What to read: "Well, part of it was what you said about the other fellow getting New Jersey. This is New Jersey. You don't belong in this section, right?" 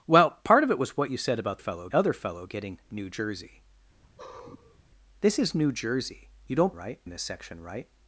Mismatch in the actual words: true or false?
true